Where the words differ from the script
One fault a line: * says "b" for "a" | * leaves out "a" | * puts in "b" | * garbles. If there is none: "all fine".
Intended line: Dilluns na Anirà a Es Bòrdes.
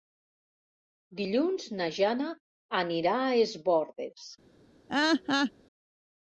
* puts in "Jana"